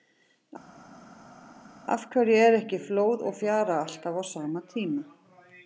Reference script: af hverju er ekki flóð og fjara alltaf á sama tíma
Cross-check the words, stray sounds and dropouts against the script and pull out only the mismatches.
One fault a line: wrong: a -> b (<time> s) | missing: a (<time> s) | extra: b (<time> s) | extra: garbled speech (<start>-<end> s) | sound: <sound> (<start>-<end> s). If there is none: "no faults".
no faults